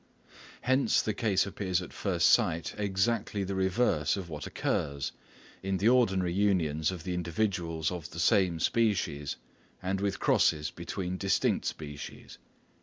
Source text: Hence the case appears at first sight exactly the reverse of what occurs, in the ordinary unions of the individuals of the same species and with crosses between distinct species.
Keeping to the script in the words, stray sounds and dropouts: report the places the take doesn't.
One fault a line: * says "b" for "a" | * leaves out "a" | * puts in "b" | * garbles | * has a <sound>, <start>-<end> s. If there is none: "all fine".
all fine